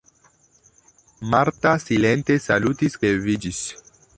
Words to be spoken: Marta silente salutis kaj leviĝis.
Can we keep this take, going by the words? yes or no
no